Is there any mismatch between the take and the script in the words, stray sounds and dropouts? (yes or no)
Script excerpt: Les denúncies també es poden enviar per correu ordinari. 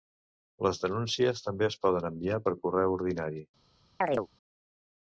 yes